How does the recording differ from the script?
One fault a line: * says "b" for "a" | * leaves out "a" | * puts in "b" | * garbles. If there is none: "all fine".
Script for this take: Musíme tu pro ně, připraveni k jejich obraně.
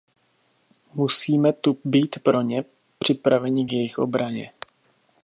* puts in "být"